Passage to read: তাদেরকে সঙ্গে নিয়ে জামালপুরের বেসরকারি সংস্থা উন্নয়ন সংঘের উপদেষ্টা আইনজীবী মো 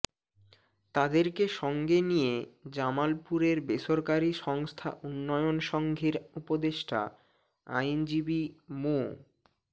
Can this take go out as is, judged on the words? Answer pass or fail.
pass